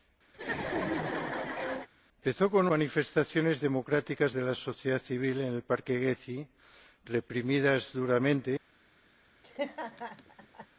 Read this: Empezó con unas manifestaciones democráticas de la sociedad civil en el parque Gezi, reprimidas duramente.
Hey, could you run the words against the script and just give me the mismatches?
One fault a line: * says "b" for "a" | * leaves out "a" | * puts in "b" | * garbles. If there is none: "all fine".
* leaves out "unas"